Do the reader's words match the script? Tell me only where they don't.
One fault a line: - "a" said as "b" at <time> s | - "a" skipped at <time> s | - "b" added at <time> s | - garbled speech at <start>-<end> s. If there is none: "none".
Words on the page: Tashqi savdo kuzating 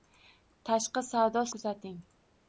none